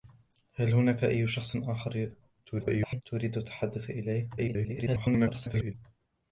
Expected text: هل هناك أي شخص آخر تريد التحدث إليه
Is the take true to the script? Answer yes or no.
no